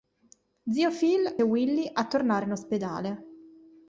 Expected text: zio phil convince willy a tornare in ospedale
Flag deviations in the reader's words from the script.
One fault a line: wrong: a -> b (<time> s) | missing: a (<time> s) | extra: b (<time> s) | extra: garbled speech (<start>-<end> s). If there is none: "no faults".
missing: convince (1.4 s)